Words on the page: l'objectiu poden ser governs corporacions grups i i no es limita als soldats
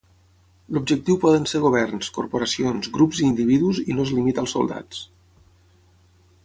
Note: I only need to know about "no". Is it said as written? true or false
true